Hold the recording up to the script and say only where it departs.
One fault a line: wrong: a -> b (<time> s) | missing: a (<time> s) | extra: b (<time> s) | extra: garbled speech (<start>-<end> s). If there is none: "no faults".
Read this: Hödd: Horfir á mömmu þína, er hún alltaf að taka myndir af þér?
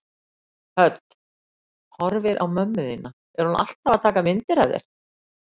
no faults